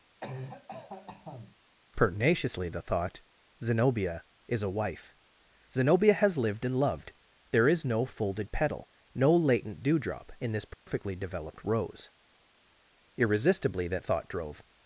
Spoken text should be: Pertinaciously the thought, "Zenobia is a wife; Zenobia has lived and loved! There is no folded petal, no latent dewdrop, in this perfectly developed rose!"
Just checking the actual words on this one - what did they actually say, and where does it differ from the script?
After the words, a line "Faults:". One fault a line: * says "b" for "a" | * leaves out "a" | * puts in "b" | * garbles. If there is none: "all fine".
Pertinaciously the thought, "Zenobia is a wife; Zenobia has lived and loved! There is no folded petal, no latent dewdrop, in this perfectly developed rose!" irresistibly that thought drove
Faults:
* puts in "irresistibly that thought drove"